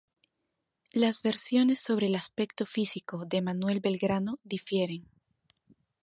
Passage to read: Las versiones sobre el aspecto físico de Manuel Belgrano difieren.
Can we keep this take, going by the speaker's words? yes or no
yes